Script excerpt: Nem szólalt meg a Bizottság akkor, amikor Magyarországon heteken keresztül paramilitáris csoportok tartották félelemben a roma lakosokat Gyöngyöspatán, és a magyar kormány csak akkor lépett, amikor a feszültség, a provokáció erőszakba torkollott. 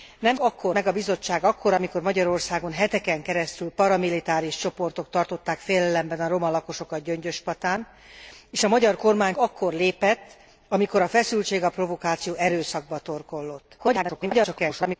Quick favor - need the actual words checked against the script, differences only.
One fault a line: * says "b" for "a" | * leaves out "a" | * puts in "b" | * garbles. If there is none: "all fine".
* says "akkor" for "szólalt"
* leaves out "csak"
* garbles